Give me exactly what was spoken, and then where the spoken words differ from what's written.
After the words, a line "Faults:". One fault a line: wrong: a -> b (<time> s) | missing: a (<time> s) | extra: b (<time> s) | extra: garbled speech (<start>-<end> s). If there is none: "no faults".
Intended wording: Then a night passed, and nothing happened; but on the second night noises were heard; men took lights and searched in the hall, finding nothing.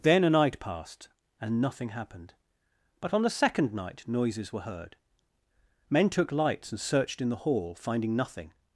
Then a night passed, and nothing happened; but on the second night noises were heard; men took lights and searched in the hall, finding nothing.
Faults:
no faults